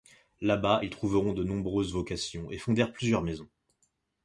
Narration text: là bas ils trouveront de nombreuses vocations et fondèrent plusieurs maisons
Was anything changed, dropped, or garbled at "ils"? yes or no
no